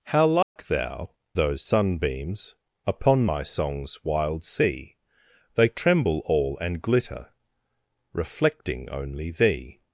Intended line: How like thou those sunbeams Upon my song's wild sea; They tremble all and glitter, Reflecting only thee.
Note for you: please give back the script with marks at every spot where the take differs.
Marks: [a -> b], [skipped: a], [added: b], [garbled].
How like thou those sunbeams Upon my song's wild sea; They tremble all and glitter, Reflecting only thee.